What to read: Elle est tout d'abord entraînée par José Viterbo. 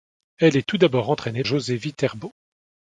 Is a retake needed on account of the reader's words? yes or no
yes